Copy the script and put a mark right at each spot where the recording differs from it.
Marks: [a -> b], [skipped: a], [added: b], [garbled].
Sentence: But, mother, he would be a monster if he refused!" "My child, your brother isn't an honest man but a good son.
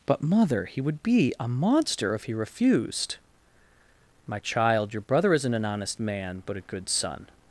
But, mother, he would be a monster if he refused!" "My child, your brother isn't an honest man but a good son.